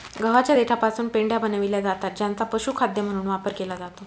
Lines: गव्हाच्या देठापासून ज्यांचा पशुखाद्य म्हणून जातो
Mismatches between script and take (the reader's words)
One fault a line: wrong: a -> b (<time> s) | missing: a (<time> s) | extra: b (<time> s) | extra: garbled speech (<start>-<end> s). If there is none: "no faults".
extra: पेंढ्या बनविल्या जातात (1.1 s)
extra: वापर केला (3.3 s)